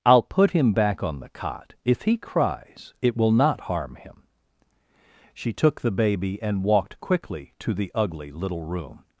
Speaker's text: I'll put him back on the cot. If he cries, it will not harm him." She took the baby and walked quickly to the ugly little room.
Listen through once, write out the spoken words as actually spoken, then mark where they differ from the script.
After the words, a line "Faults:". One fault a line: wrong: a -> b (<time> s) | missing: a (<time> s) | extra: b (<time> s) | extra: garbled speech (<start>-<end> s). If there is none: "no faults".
I'll put him back on the cot. If he cries, it will not harm him." She took the baby and walked quickly to the ugly little room.
Faults:
no faults